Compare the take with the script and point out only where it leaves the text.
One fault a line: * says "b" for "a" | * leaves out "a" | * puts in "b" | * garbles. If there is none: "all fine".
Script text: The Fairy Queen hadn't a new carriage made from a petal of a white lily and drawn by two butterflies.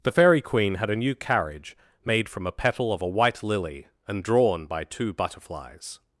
* says "had" for "hadn't"